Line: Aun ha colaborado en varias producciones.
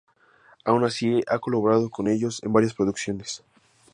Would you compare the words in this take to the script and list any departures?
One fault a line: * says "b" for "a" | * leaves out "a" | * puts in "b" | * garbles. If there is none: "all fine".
* puts in "así"
* puts in "con ellos"